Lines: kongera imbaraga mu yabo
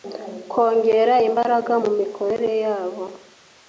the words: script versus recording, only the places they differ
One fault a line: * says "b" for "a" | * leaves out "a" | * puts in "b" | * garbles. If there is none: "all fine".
* puts in "mikorere"